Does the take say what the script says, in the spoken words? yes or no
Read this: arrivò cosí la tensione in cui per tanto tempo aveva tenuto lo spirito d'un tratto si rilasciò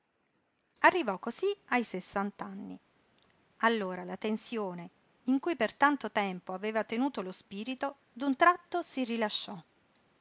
no